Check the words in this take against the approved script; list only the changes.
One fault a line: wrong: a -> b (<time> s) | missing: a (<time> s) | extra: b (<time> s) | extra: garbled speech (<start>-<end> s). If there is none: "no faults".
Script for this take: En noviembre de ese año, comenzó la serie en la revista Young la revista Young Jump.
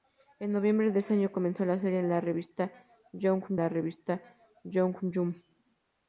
no faults